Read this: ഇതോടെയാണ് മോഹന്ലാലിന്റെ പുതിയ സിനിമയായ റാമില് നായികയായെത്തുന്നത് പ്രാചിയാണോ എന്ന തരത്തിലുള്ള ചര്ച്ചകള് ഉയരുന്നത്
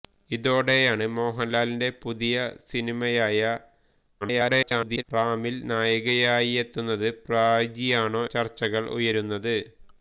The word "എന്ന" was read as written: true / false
false